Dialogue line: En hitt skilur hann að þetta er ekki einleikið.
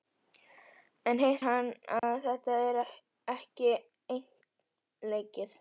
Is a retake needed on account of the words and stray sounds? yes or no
yes